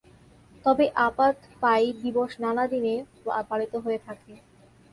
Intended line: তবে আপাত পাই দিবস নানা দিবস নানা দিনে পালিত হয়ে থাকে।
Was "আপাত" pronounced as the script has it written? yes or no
yes